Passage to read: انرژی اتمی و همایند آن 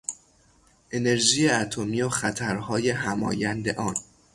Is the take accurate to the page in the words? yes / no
no